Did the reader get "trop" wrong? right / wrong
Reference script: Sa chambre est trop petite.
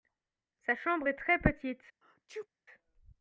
wrong